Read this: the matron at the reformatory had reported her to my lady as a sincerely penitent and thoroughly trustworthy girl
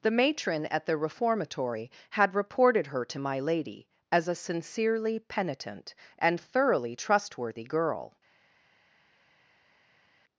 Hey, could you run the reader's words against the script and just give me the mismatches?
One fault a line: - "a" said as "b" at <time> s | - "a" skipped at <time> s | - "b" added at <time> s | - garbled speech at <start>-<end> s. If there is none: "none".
none